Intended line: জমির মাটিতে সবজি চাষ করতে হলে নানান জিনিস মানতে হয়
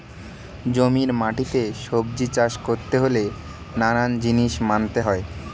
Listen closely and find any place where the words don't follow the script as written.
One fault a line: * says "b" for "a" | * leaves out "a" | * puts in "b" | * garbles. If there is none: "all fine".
all fine